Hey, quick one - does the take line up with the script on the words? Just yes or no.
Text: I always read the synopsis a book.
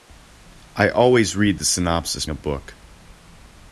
yes